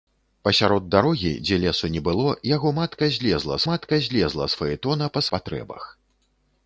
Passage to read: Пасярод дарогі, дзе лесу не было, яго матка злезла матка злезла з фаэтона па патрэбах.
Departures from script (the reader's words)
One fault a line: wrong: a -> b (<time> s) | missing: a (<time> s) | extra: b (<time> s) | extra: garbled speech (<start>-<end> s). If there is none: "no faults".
no faults